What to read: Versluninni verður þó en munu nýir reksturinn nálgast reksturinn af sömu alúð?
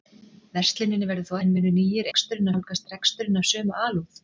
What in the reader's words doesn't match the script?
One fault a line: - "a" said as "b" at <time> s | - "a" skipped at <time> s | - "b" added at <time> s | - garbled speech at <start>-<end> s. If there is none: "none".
none